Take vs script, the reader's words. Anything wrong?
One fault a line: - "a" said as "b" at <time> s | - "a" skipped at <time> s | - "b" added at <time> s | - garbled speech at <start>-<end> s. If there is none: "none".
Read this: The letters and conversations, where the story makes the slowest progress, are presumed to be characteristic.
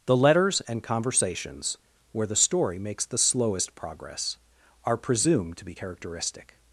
none